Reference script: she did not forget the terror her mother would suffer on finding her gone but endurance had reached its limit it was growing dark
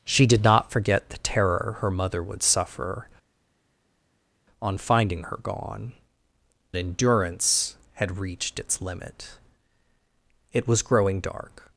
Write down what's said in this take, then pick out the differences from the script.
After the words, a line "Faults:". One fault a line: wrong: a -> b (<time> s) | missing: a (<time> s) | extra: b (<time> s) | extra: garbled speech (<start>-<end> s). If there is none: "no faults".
she did not forget the terror her mother would suffer on finding her gone endurance had reached its limit it was growing dark
Faults:
missing: but (5.9 s)